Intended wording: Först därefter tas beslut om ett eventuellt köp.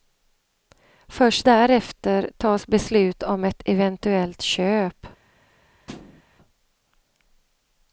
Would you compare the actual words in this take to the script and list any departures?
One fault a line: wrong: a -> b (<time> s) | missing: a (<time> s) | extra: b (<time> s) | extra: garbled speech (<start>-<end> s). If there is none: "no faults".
no faults